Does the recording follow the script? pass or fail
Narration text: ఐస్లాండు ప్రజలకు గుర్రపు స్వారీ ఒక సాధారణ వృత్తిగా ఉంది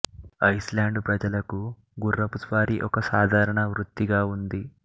pass